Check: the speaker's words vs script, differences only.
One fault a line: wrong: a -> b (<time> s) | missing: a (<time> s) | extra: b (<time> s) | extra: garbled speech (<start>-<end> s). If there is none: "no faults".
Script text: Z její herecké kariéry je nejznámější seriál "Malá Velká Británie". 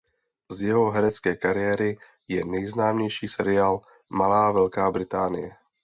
wrong: její -> jeho (0.6 s)